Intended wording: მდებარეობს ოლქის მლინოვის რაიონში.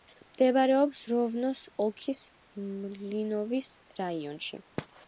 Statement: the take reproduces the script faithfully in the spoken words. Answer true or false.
false